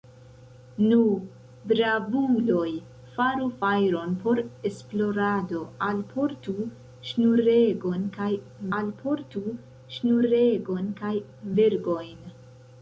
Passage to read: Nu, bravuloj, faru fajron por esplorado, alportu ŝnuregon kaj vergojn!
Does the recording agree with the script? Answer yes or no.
no